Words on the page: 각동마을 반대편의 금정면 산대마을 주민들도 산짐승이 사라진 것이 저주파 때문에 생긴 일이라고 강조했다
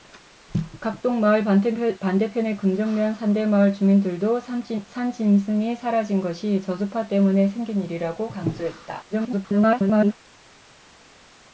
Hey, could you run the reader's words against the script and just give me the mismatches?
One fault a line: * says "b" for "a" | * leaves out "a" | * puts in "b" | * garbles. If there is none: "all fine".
* garbles